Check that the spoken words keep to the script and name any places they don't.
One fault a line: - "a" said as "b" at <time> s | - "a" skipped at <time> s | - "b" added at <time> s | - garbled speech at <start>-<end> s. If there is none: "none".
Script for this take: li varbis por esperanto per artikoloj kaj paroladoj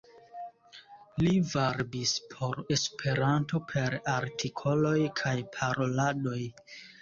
none